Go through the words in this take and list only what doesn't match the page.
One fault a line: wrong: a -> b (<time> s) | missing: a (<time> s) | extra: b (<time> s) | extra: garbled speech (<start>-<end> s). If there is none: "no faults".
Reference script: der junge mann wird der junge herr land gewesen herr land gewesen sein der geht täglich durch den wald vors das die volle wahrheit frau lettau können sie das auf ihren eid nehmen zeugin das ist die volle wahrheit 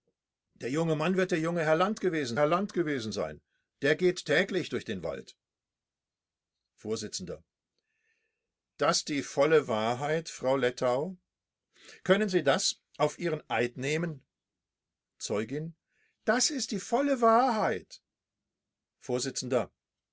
no faults